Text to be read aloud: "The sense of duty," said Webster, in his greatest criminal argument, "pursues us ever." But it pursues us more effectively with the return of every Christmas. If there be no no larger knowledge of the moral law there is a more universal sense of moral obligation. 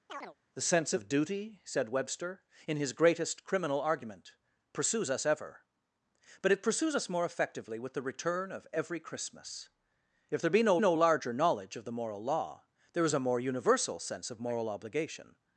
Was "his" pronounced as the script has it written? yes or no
yes